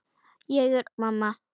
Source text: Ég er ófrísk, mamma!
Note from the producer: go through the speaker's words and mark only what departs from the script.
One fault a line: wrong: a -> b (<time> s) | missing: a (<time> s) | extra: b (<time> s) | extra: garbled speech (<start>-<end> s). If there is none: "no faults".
missing: ófrísk (0.9 s)